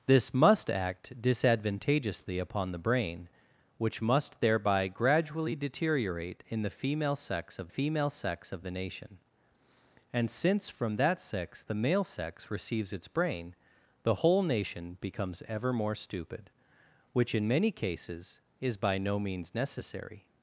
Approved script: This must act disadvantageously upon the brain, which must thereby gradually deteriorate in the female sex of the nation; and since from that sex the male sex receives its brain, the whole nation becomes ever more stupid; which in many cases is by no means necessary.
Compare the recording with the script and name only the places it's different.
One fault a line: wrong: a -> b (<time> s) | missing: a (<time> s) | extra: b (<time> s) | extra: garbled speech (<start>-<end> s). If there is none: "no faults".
extra: female sex of (7.7 s)